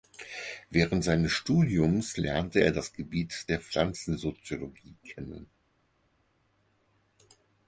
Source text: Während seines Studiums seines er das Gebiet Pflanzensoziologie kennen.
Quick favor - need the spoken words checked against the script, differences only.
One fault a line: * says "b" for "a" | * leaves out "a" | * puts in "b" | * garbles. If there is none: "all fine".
* says "lernte" for "seines"
* puts in "der"